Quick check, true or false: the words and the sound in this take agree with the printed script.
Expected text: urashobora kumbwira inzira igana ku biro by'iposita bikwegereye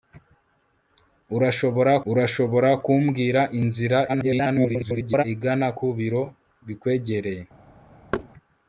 false